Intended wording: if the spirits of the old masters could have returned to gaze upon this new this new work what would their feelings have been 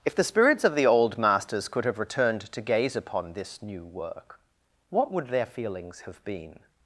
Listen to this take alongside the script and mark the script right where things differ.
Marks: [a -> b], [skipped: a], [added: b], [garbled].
if the spirits of the old masters could have returned to gaze upon this new [skipped: this new] work what would their feelings have been